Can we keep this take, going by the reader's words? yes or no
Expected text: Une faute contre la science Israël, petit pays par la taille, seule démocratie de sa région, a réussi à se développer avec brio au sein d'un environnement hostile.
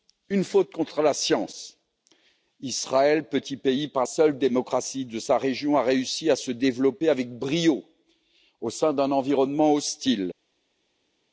no